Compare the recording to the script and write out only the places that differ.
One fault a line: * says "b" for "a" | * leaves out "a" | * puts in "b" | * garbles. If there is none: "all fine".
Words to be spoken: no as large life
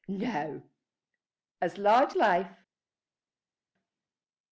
all fine